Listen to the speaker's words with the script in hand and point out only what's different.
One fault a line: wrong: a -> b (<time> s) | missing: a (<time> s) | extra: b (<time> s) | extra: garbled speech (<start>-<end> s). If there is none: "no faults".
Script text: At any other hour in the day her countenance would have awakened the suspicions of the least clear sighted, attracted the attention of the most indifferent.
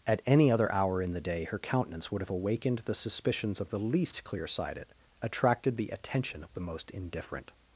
no faults